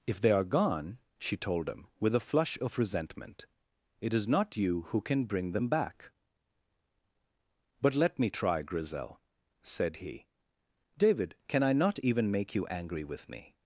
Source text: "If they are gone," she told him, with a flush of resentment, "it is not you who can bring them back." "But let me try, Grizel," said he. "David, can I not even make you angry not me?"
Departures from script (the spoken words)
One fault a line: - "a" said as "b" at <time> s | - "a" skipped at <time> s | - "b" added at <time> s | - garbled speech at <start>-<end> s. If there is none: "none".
- "not" said as "with" at 13.0 s